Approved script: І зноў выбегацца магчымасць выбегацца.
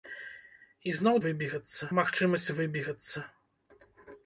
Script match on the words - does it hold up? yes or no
yes